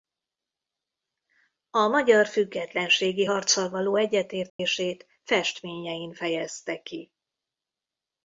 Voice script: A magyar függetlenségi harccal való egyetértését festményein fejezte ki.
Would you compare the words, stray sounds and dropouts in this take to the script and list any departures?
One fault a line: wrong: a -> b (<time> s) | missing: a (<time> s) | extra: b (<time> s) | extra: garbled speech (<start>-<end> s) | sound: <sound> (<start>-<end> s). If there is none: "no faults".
sound: dropout (4.5-4.6 s)